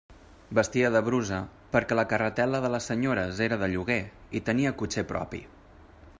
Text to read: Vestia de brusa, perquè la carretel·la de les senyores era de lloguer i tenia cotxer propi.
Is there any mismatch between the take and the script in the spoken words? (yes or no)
no